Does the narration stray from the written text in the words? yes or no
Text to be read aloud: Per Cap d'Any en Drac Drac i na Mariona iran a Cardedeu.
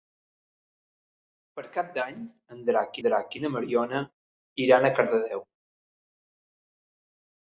no